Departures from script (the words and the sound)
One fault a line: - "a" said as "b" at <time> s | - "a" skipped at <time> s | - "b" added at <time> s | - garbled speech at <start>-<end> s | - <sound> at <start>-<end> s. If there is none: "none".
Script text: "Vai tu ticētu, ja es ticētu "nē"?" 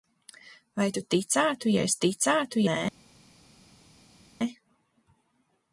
none